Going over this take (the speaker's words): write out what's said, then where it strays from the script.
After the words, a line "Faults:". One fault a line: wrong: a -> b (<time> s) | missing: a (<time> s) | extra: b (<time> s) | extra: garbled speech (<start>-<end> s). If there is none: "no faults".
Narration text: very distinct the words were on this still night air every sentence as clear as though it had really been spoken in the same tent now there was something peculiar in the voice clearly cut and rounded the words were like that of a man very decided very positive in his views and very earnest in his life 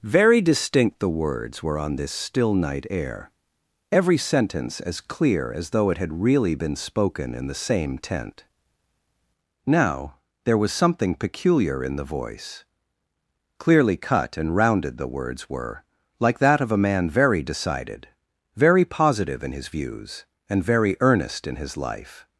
very distinct the words were on this still night air every sentence as clear as though it had really been spoken in the same tent now there was something peculiar in the voice clearly cut and rounded the words were like that of a man very decided very positive in his views and very earnest in his life
Faults:
no faults